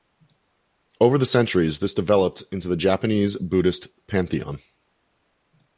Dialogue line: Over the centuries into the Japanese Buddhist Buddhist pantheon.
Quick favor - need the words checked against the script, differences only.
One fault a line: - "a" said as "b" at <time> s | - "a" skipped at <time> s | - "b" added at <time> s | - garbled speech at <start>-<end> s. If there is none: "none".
- "this developed" added at 1.8 s
- "Buddhist" skipped at 3.9 s